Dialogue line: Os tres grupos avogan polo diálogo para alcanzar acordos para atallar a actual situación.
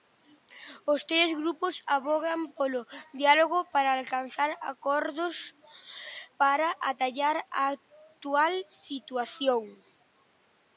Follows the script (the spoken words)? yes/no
yes